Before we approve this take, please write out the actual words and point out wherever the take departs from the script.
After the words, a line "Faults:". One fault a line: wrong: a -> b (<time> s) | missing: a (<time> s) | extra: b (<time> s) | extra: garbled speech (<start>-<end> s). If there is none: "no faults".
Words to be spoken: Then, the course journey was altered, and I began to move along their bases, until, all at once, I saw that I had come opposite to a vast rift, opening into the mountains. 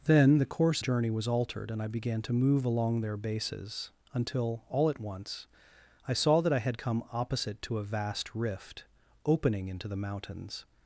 Then, the course journey was altered, and I began to move along their bases, until, all at once, I saw that I had come opposite to a vast rift, opening into the mountains.
Faults:
no faults